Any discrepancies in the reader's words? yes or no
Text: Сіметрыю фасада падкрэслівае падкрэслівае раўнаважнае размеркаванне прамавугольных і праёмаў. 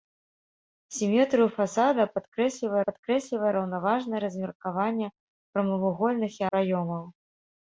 no